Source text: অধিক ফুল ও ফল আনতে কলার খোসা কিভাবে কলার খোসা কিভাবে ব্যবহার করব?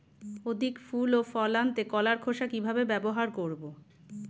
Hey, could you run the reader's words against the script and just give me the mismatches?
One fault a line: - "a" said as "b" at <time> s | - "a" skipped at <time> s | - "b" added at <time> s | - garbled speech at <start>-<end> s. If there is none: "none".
- "কলার খোসা কিভাবে" skipped at 2.8 s